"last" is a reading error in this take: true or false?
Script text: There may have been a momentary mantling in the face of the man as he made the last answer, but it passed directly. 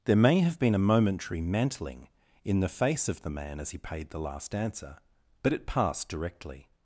false